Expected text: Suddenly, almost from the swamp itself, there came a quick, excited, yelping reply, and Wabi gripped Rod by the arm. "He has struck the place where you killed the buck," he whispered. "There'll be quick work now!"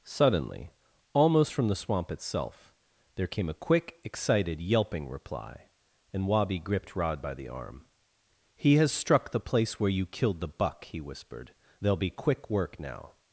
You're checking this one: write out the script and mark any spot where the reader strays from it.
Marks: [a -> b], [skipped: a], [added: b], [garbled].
Suddenly, almost from the swamp itself, there came a quick, excited, yelping reply, and Wabi gripped Rod by the arm. "He has struck the place where you killed the buck," he whispered. "There'll be quick work now!"